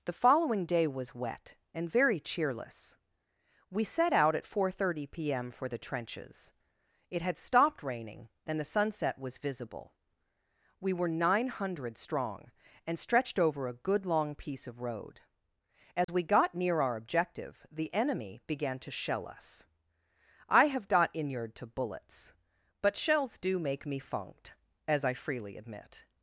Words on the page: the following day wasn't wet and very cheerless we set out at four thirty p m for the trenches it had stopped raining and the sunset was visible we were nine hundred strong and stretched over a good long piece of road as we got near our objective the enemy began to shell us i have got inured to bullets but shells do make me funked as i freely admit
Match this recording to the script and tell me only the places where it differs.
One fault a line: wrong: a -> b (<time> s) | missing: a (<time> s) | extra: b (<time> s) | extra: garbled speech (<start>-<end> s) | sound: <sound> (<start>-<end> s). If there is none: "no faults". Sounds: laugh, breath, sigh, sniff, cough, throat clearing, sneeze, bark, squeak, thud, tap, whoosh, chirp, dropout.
wrong: wasn't -> was (0.9 s)
sound: dropout (16.0-16.1 s)